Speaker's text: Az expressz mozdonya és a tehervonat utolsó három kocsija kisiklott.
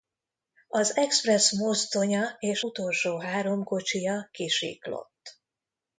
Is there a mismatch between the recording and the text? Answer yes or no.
yes